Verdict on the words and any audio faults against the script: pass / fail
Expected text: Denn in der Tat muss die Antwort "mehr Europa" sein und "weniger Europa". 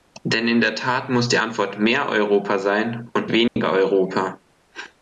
fail